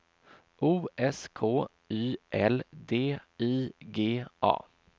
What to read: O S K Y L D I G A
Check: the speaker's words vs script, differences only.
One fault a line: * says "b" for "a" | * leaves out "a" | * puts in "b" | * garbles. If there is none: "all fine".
all fine